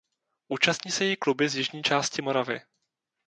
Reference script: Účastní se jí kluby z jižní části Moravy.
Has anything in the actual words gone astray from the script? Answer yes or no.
no